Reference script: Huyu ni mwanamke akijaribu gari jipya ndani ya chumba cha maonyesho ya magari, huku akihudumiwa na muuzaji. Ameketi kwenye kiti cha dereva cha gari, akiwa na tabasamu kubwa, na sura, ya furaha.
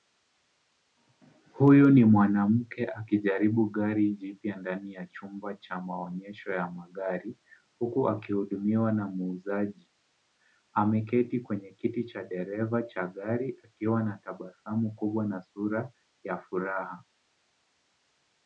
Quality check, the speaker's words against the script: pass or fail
pass